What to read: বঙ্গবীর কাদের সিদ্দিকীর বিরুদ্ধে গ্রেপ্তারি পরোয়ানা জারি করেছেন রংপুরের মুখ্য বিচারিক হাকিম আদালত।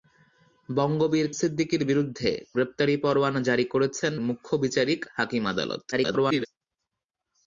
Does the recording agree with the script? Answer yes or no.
no